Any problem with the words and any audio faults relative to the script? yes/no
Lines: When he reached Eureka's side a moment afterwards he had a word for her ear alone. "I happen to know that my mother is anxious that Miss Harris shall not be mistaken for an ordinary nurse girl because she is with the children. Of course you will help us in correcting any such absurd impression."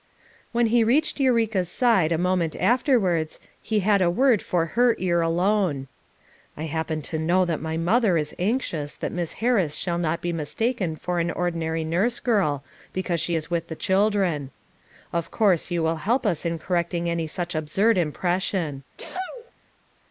yes